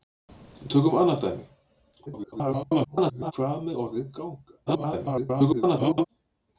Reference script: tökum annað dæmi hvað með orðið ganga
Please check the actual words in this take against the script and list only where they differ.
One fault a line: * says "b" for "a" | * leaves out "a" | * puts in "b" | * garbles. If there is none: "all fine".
* garbles
* garbles